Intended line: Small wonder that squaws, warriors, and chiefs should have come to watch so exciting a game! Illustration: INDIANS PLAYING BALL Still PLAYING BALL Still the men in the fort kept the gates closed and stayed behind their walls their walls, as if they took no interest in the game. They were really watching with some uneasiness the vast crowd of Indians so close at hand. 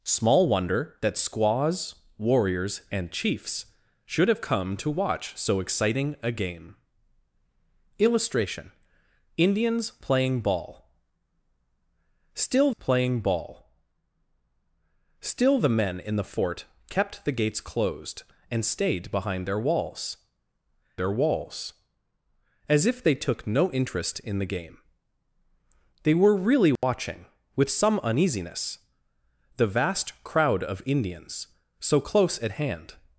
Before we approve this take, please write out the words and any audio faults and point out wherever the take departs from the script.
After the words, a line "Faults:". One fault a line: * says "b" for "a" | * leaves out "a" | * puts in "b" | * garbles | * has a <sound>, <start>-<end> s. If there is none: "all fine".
Small wonder that squaws, warriors, and chiefs should have come to watch so exciting a game! Illustration: INDIANS PLAYING BALL Still PLAYING BALL Still the men in the fort kept the gates closed and stayed behind their walls their walls, as if they took no interest in the game. They were really watching with some uneasiness the vast crowd of Indians so close at hand.
Faults:
* has a dropout, 26.8-26.8 s